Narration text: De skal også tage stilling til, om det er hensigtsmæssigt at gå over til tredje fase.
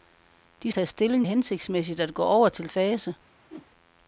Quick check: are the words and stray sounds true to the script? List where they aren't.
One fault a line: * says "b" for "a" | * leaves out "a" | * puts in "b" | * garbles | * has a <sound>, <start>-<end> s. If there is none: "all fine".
* leaves out "skal også"
* leaves out "til om det"
* leaves out "tredje"
* has a whoosh, 3.5-3.7 s